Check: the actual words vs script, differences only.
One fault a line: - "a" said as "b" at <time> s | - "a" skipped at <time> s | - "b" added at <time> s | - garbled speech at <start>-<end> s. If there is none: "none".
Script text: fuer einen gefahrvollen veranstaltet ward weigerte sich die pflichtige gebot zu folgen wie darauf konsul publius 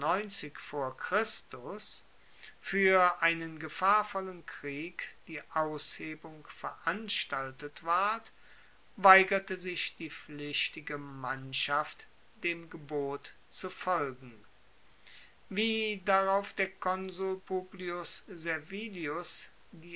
- "krieg die aushebung" added at 4.5 s
- "mannschaft dem" added at 11.0 s
- "der" added at 16.5 s